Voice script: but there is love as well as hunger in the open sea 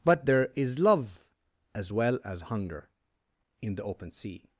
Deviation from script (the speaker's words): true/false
false